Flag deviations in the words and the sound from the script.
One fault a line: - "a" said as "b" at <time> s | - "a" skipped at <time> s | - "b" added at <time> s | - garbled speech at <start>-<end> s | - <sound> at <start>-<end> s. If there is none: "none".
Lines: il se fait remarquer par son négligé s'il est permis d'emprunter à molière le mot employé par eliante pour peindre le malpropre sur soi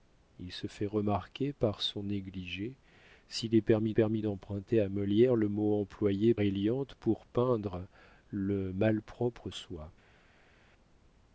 - "permis" added at 3.9 s
- "par" skipped at 6.3 s
- "sur" skipped at 9.5 s